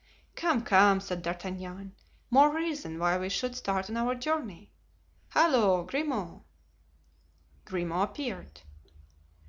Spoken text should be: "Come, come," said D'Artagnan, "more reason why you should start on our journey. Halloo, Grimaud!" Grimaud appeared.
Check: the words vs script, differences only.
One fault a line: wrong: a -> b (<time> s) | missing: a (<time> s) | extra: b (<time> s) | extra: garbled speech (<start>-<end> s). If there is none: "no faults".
wrong: you -> we (3.2 s)